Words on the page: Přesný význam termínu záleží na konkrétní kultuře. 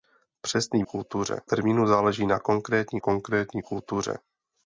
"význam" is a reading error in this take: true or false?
true